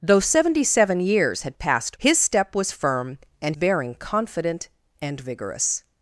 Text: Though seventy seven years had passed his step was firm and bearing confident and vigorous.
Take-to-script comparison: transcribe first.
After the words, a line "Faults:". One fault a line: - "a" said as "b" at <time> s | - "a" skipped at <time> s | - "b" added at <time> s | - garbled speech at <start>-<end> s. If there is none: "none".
Though seventy seven years had passed his step was firm and bearing confident and vigorous.
Faults:
none